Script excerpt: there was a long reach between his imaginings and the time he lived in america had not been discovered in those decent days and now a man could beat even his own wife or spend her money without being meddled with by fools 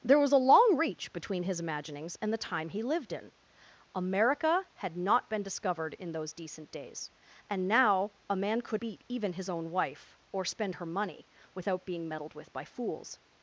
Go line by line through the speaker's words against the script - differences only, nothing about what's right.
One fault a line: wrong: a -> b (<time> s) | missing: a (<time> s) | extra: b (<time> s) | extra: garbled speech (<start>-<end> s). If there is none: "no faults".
no faults